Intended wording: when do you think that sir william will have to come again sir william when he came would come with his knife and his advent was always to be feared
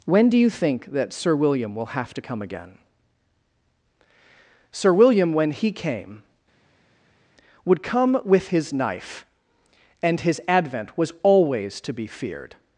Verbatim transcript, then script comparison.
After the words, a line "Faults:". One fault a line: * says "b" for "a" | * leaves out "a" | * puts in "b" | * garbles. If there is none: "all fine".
when do you think that sir william will have to come again sir william when he came would come with his knife and his advent was always to be feared
Faults:
all fine